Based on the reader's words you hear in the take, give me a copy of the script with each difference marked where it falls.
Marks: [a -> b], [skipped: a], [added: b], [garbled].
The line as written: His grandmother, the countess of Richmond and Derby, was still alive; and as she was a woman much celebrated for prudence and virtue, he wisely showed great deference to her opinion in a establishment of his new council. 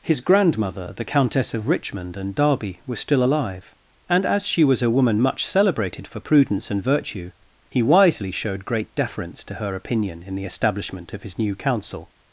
His grandmother, the countess of Richmond and Derby, was still alive; and as she was a woman much celebrated for prudence and virtue, he wisely showed great deference to her opinion in [a -> the] establishment of his new council.